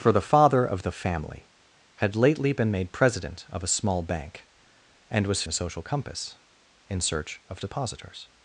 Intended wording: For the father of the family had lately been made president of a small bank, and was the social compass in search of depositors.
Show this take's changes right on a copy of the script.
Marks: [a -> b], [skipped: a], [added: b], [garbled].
For the father of the family had lately been made president of a small bank, and was the social compass in search of depositors.